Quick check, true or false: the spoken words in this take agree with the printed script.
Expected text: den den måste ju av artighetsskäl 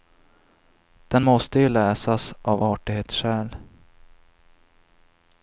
false